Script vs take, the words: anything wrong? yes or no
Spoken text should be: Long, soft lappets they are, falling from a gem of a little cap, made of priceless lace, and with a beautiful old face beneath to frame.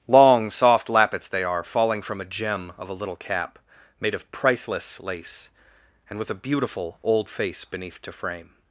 no